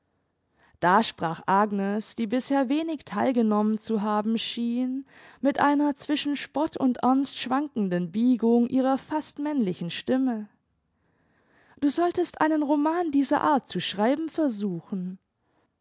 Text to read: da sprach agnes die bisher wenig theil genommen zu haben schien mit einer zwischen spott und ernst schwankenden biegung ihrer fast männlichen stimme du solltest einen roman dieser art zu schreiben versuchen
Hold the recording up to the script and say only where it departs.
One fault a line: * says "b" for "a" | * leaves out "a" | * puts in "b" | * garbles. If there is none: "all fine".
all fine